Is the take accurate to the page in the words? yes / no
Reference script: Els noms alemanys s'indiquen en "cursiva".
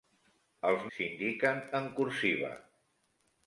no